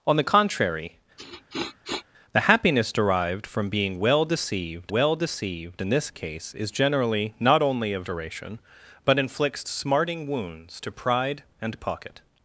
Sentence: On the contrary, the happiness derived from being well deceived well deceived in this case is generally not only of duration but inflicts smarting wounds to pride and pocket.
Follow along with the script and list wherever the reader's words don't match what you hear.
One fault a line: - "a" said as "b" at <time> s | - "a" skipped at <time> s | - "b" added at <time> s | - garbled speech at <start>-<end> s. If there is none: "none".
none